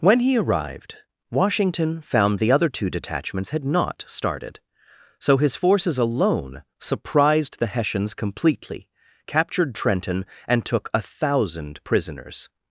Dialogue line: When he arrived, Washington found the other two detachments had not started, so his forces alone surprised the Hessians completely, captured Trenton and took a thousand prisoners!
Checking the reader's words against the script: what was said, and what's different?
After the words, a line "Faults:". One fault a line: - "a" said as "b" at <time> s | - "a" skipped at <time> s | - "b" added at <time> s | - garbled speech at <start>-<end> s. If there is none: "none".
When he arrived, Washington found the other two detachments had not started, so his forces alone surprised the Hessians completely, captured Trenton and took a thousand prisoners!
Faults:
none